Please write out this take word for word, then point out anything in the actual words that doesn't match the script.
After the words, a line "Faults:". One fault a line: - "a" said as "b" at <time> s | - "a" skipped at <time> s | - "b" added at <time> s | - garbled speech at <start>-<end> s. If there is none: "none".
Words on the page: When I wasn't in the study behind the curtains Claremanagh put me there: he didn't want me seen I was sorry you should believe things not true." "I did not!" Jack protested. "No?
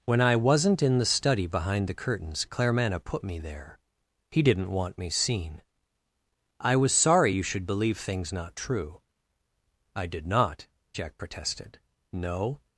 When I wasn't in the study behind the curtains Claremanagh put me there: he didn't want me seen I was sorry you should believe things not true." "I did not!" Jack protested. "No?
Faults:
none